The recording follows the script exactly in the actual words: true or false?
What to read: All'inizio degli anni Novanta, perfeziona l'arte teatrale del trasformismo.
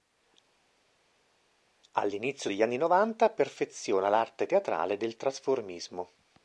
true